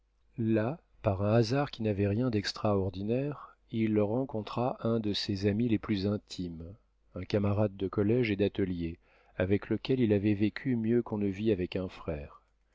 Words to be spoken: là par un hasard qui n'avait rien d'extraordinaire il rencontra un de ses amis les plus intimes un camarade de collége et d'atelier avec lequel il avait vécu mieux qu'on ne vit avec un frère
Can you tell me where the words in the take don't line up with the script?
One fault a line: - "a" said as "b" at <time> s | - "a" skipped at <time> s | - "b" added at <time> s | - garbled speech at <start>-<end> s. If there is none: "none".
none